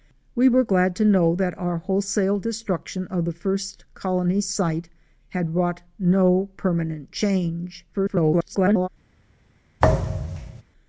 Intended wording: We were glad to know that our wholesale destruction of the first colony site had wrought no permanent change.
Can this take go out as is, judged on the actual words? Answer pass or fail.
fail